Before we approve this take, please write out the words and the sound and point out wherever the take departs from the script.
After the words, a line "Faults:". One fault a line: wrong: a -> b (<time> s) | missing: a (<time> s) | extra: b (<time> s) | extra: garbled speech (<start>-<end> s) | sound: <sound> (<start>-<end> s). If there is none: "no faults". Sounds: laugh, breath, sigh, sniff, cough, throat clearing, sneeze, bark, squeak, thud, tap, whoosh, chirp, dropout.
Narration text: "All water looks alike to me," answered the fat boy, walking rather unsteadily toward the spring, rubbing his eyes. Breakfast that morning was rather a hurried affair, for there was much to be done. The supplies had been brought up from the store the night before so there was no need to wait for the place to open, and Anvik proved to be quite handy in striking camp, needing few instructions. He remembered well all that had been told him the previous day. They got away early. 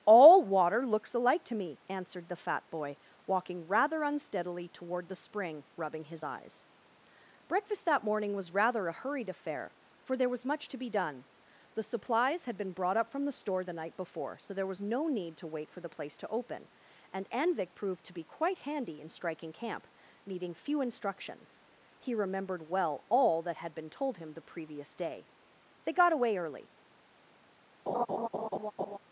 "All water looks alike to me," answered the fat boy, walking rather unsteadily toward the spring, rubbing his eyes. Breakfast that morning was rather a hurried affair, for there was much to be done. The supplies had been brought up from the store the night before so there was no need to wait for the place to open, and Anvik proved to be quite handy in striking camp, needing few instructions. He remembered well all that had been told him the previous day. They got away early.
Faults:
sound: laugh (27.9-29.0 s)